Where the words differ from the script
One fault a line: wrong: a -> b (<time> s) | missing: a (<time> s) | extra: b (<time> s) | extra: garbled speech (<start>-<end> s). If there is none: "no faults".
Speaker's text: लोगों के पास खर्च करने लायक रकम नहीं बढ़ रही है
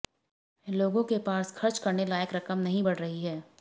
no faults